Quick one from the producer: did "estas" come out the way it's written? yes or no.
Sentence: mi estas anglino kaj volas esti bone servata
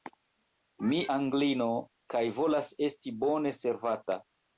no